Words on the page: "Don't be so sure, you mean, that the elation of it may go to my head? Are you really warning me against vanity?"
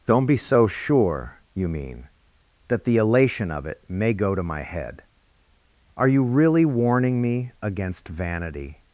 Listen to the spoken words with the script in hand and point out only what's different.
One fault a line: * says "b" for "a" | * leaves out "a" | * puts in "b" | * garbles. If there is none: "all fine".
all fine